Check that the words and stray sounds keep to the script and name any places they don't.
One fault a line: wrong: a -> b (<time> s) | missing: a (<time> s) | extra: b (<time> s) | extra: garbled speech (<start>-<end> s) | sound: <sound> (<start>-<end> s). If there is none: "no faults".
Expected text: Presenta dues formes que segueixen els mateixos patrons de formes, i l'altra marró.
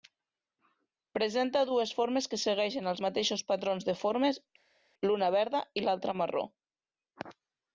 extra: l'una verda (5.1 s)